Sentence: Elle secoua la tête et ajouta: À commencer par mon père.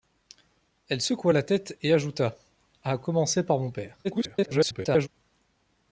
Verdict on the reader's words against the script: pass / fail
fail